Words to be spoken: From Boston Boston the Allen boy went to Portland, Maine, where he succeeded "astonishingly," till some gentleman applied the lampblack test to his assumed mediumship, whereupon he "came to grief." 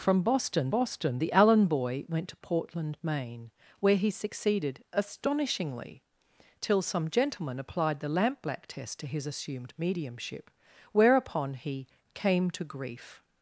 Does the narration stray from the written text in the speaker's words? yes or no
no